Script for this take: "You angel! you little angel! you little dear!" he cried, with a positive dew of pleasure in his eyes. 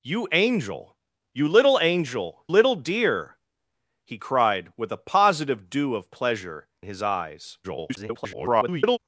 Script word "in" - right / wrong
wrong